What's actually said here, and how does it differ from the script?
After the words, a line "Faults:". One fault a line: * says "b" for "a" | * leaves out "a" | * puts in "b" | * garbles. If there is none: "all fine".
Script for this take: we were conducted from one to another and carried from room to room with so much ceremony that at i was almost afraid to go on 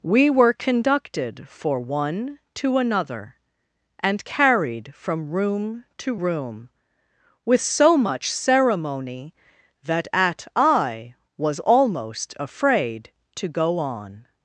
we were conducted for one to another and carried from room to room with so much ceremony that at i was almost afraid to go on
Faults:
* says "for" for "from"